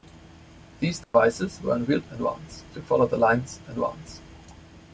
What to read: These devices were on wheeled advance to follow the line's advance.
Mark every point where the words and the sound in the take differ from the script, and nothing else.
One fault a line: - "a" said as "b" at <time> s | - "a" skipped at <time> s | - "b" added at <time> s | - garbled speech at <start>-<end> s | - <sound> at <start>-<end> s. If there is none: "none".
- dropout at 1.0-1.1 s